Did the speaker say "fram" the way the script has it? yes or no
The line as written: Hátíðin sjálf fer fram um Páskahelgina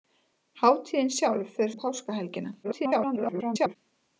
no